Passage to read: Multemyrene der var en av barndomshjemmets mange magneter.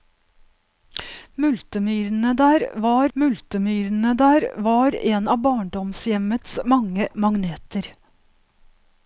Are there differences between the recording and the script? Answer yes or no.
yes